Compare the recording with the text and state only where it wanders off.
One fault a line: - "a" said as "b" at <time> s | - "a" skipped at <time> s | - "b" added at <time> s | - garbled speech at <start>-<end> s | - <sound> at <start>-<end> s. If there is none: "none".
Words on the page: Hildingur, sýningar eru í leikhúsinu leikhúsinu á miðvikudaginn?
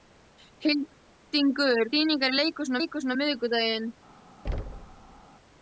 - thud at 4.4-5.2 s